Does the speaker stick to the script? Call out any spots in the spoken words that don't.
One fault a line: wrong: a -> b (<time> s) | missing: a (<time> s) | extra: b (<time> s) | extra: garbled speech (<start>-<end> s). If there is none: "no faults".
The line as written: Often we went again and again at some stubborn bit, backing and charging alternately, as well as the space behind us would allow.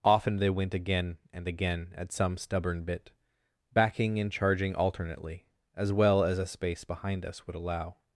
wrong: we -> they (0.4 s)
wrong: the -> a (6.4 s)